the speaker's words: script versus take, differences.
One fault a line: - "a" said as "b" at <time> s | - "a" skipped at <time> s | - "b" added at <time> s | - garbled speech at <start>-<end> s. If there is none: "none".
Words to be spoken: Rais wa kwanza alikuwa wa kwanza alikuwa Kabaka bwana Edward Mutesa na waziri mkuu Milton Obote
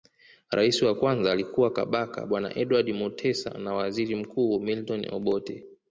- "wa kwanza alikuwa" skipped at 1.7 s